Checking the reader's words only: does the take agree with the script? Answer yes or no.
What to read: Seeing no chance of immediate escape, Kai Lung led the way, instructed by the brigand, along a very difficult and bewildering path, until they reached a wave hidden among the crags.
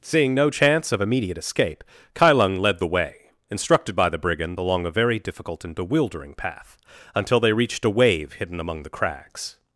yes